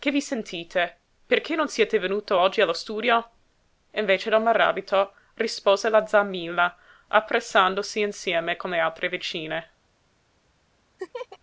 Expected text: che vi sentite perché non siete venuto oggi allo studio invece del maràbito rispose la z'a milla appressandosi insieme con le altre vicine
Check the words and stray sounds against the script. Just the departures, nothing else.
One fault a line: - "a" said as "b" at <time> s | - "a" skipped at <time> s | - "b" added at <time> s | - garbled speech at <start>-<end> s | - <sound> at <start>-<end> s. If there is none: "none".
- laugh at 11.0-11.4 s